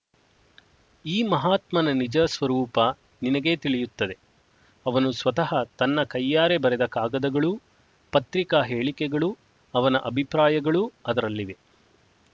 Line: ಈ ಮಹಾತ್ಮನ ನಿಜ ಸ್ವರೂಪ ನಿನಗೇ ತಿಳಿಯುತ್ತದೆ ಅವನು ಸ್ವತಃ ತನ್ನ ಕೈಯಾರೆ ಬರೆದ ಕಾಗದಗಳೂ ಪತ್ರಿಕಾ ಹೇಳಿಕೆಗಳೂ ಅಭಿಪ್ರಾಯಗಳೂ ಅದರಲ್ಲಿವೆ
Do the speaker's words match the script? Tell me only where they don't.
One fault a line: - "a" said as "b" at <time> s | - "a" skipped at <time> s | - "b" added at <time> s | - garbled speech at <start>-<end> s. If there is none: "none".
- "ಅವನ" added at 9.7 s